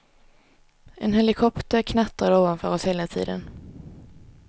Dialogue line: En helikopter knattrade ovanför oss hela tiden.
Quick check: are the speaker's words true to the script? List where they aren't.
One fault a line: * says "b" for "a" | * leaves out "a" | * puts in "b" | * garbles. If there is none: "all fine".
all fine